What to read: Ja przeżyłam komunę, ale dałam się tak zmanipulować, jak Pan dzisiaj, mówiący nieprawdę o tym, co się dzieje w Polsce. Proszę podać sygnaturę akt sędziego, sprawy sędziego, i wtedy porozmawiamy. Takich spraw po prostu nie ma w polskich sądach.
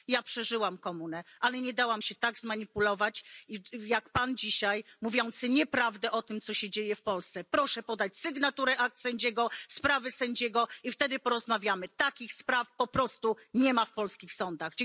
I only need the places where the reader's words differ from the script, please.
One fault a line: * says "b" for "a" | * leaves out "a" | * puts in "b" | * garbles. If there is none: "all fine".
* puts in "nie"